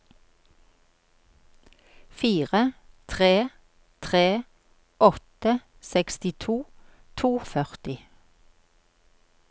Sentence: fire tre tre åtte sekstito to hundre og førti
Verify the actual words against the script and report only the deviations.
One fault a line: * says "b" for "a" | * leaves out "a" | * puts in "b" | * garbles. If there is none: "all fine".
* leaves out "hundre"